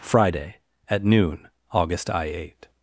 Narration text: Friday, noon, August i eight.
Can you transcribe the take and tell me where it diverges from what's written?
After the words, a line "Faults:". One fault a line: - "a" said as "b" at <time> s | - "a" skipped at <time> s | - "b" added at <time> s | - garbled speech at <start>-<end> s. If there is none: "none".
Friday, at noon, August i eight.
Faults:
- "at" added at 0.9 s